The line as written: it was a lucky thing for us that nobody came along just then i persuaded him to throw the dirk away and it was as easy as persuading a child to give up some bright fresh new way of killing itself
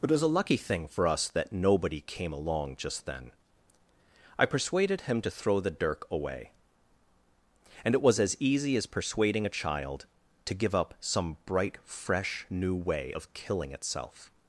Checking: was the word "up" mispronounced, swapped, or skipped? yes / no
no